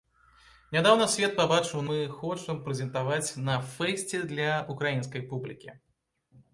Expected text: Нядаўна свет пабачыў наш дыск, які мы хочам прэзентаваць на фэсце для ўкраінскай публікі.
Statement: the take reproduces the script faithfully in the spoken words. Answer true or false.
false